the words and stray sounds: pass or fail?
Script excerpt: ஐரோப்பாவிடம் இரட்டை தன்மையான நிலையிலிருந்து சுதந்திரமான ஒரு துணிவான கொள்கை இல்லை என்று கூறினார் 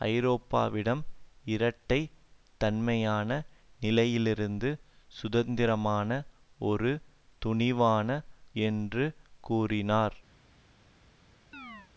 fail